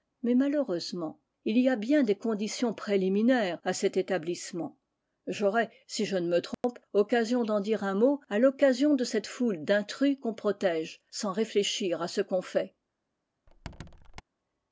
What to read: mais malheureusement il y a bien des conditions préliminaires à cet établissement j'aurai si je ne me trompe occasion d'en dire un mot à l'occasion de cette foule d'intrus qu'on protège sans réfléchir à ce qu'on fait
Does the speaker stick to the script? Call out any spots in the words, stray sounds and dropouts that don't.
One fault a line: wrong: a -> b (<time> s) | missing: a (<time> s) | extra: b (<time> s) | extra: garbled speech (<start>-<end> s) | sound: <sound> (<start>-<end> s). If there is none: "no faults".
sound: dropout (6.5-6.6 s)
sound: squeak (13.5-14.2 s)